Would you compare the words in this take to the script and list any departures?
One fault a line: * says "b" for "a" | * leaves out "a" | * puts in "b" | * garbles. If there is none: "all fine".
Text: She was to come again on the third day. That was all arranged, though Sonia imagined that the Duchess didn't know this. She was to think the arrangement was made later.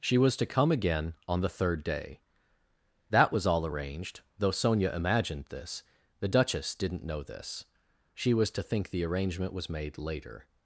* says "this" for "that"